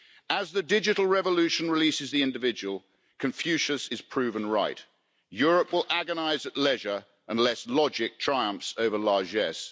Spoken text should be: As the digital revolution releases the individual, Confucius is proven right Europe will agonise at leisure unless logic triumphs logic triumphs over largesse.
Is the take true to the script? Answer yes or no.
no